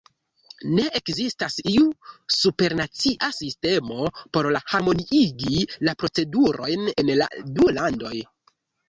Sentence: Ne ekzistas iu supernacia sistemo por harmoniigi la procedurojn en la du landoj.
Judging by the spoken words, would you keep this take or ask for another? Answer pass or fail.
pass